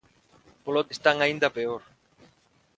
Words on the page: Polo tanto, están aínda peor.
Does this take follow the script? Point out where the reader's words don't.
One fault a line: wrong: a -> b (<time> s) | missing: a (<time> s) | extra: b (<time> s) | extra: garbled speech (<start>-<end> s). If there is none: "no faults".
missing: tanto (0.8 s)